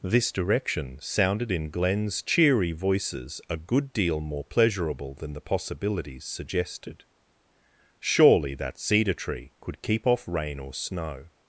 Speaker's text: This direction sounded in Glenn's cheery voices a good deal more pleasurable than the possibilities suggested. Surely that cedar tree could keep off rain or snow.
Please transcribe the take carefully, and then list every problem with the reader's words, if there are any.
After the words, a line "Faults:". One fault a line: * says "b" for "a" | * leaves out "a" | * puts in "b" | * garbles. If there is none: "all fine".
This direction sounded in Glenn's cheery voices a good deal more pleasurable than the possibilities suggested. Surely that cedar tree could keep off rain or snow.
Faults:
all fine